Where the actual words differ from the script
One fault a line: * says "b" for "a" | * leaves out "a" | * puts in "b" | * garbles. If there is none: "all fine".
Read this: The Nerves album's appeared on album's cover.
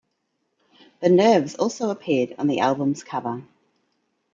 * says "also" for "album's"
* puts in "the"